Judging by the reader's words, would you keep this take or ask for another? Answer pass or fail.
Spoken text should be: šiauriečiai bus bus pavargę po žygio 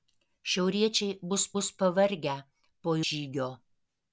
pass